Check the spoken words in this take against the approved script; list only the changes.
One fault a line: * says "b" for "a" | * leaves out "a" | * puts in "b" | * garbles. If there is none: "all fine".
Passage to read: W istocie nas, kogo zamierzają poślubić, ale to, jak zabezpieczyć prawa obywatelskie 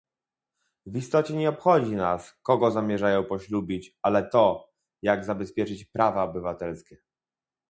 * puts in "nie obchodzi"